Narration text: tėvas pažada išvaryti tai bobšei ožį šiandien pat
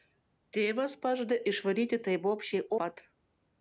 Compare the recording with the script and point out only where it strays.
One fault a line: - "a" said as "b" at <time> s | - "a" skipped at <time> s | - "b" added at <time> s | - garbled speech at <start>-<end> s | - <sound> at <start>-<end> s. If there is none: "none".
- "ožį šiandien" skipped at 2.6 s